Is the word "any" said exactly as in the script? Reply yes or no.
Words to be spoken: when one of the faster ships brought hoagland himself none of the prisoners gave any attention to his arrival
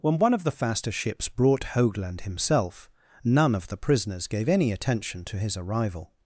yes